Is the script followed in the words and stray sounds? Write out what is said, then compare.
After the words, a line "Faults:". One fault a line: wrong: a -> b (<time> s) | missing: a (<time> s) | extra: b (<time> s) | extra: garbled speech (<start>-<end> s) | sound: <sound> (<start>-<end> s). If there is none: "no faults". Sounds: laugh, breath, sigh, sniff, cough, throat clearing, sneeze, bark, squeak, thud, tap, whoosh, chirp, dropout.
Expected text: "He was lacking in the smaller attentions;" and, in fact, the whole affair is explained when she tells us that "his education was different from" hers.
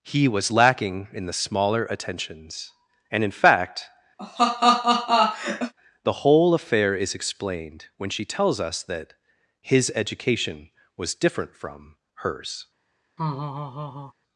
"He was lacking in the smaller attentions;" and, in fact, the whole affair is explained when she tells us that "his education was different from" hers.
Faults:
sound: laugh (4.2-5.7 s)
sound: laugh (13.2-14.1 s)